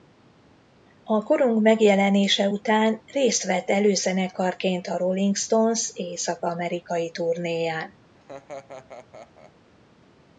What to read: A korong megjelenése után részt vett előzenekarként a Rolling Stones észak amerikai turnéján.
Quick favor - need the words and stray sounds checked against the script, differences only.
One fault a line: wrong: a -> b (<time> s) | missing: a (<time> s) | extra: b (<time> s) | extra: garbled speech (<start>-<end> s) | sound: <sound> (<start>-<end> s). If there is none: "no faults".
sound: laugh (8.1-9.5 s)